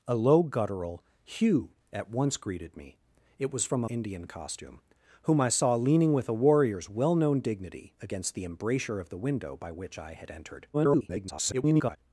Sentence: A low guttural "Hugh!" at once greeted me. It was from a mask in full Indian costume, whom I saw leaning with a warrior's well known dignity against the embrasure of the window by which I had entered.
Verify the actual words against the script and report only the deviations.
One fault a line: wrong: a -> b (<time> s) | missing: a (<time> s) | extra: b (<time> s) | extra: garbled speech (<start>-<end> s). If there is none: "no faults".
missing: mask in full (3.9 s)
extra: garbled speech (10.7-12.0 s)